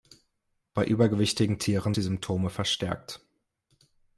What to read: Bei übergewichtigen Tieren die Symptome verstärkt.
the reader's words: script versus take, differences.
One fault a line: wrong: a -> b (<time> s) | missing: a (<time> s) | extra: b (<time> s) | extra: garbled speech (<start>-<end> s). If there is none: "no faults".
no faults